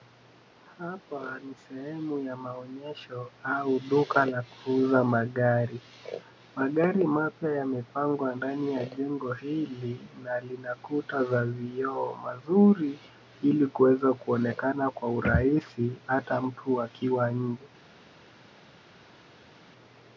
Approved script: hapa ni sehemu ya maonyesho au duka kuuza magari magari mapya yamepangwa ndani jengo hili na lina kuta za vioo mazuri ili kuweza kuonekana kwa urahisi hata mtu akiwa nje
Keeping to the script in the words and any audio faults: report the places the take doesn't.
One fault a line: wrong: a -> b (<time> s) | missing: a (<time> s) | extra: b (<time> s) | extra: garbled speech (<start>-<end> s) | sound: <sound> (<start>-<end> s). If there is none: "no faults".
extra: la (4.2 s)
extra: ya (8.7 s)